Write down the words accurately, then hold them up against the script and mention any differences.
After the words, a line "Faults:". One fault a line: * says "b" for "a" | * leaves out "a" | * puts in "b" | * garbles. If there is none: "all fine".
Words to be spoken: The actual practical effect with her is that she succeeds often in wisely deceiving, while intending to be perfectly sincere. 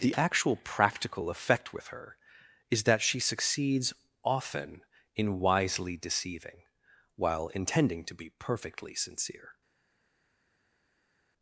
The actual practical effect with her is that she succeeds often in wisely deceiving, while intending to be perfectly sincere.
Faults:
all fine